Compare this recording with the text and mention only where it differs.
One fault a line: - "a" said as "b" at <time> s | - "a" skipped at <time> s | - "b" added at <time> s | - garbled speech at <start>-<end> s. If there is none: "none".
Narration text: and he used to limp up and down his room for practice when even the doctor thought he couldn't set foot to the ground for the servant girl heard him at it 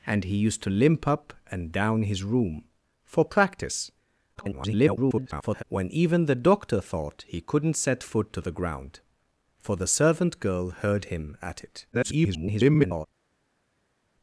- garbled speech at 4.3-5.6 s
- garbled speech at 11.9-13.1 s